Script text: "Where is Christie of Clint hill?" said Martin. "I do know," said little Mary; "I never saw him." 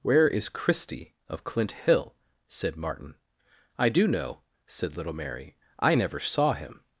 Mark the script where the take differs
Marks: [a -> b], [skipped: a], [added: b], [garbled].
"Where is Christie of Clint hill?" said Martin. "I do know," said little Mary; "I never saw him."